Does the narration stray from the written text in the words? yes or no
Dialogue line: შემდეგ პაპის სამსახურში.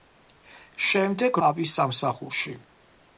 no